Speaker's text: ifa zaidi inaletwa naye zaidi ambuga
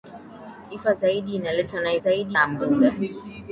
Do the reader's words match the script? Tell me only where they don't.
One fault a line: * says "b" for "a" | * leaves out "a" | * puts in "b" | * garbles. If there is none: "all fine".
all fine